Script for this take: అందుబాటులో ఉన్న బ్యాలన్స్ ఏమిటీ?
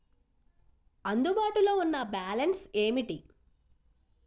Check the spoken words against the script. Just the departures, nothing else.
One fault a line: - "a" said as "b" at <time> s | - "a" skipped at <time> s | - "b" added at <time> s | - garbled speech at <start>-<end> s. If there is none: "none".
none